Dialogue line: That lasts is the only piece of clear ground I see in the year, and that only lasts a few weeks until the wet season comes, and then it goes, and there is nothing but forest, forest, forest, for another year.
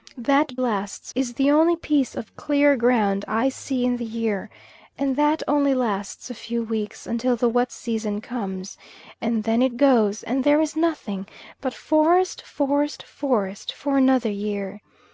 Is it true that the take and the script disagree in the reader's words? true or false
false